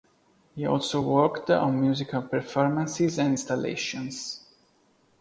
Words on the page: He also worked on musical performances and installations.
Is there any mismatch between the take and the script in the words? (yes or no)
no